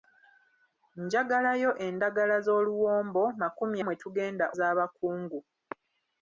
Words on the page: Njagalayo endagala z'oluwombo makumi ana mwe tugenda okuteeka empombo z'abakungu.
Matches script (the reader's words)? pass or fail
fail